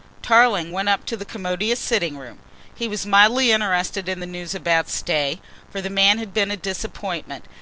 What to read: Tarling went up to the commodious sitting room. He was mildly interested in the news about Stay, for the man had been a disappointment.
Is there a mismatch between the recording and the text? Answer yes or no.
no